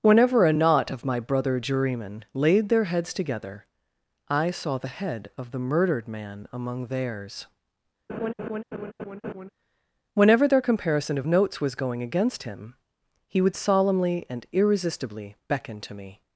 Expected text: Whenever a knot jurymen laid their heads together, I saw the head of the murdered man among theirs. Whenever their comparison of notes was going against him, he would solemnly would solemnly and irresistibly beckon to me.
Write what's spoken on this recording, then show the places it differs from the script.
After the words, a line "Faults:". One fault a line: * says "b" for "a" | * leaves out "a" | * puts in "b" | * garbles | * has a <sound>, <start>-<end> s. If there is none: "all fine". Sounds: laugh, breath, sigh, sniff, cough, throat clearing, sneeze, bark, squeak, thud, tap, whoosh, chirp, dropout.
Whenever a knot of my brother jurymen laid their heads together, I saw the head of the murdered man among theirs. Whenever their comparison of notes was going against him, he would solemnly and irresistibly beckon to me.
Faults:
* puts in "of my brother"
* has a laugh, 8.1-9.5 s
* leaves out "would solemnly"